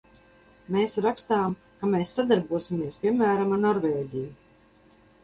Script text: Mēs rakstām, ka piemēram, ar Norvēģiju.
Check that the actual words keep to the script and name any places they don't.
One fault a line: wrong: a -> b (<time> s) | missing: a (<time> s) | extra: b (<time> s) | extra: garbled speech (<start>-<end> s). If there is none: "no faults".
extra: mēs sadarbosimies (1.9 s)